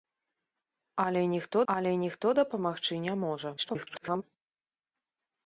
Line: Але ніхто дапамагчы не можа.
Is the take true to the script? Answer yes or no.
no